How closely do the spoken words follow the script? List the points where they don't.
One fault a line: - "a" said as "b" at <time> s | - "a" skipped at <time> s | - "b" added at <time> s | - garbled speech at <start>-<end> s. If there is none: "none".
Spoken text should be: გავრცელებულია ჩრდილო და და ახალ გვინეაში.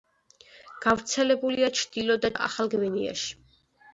none